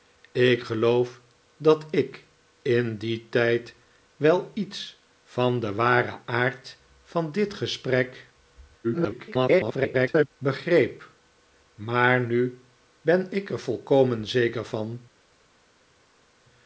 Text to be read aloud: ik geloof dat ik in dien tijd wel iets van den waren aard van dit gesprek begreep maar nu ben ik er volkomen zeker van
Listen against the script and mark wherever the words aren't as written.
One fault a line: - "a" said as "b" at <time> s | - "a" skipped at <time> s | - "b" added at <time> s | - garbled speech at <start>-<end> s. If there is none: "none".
- garbled speech at 8.8-10.3 s